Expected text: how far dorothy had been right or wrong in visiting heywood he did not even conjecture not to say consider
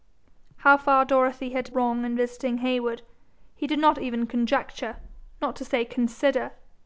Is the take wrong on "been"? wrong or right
wrong